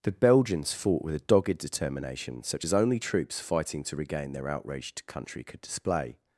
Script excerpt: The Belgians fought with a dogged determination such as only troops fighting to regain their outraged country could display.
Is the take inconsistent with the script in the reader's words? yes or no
no